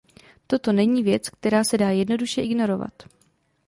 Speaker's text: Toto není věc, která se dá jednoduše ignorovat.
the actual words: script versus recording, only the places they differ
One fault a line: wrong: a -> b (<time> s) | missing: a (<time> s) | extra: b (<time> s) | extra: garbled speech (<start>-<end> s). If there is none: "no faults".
no faults